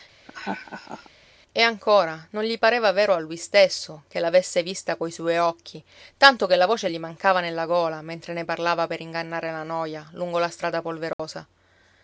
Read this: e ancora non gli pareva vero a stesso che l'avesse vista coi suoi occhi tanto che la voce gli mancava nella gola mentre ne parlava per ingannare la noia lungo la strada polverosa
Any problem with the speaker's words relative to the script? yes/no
yes